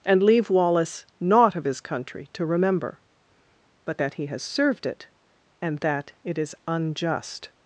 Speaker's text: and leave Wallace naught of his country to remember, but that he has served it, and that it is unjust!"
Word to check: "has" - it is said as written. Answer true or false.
true